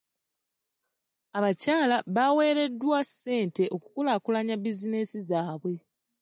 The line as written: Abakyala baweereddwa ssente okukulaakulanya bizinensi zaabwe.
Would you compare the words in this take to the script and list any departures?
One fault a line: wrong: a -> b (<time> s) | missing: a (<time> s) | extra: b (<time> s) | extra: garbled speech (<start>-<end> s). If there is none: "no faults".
no faults